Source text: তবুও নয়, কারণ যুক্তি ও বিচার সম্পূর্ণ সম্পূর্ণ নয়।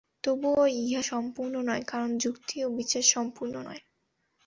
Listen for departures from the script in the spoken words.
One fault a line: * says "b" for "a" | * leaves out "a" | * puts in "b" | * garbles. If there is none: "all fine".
* puts in "ইহা সম্পূর্ণ"
* leaves out "সম্পূর্ণ"